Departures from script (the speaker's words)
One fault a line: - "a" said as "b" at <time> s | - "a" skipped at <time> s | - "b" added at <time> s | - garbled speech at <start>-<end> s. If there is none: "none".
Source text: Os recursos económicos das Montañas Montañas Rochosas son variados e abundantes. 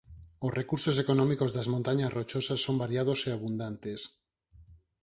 - "Montañas" skipped at 2.1 s